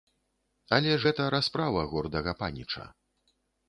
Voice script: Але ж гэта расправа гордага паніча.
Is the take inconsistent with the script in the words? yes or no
no